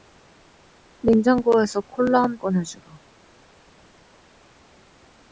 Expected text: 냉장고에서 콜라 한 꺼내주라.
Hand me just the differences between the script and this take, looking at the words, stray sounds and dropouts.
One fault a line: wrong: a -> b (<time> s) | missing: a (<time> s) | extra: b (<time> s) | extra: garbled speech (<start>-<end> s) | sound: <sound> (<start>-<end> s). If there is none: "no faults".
no faults